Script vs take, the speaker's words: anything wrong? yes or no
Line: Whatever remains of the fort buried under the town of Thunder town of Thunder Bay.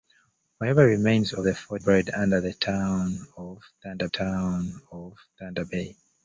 no